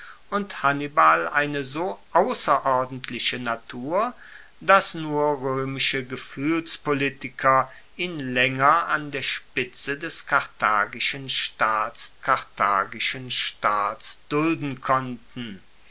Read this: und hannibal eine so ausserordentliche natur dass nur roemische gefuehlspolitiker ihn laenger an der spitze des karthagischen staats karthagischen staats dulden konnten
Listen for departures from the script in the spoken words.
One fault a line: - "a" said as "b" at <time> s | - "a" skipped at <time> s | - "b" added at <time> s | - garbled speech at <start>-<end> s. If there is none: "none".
none